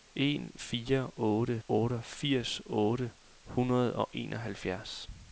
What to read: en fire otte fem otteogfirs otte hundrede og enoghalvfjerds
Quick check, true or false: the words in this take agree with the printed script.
false